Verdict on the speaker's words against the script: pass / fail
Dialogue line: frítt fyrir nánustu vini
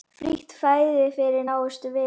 fail